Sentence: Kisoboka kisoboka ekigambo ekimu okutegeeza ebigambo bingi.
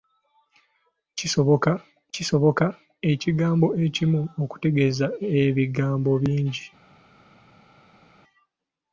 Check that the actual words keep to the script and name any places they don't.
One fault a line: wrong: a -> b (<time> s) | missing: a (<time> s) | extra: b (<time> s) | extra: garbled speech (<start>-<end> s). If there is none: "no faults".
no faults